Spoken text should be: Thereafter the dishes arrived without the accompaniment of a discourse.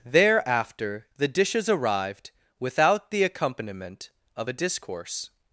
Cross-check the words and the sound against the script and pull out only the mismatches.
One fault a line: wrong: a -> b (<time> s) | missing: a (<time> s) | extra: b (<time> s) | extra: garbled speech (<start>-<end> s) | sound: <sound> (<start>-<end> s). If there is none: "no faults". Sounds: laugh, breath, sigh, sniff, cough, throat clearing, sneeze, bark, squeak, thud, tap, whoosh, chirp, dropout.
no faults